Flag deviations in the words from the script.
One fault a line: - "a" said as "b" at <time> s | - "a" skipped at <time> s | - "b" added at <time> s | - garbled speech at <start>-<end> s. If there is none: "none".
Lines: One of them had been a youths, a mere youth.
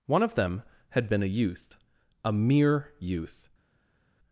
- "youths" said as "youth" at 1.3 s